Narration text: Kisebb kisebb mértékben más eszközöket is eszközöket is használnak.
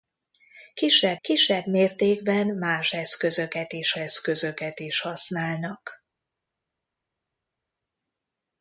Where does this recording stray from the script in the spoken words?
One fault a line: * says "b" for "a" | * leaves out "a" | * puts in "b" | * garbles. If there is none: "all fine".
all fine